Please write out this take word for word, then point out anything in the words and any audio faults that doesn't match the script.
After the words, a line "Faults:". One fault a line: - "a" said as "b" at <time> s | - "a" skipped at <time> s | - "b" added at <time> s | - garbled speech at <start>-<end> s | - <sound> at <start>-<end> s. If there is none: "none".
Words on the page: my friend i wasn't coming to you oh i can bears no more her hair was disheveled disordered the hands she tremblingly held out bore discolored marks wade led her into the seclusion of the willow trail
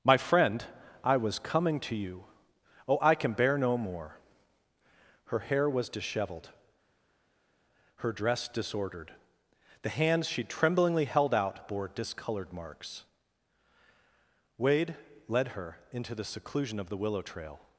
my friend i was coming to you oh i can bear no more her hair was disheveled her dress disordered the hands she tremblingly held out bore discolored marks wade led her into the seclusion of the willow trail
Faults:
- "wasn't" said as "was" at 1.2 s
- "bears" said as "bear" at 3.3 s
- "her dress" added at 8.0 s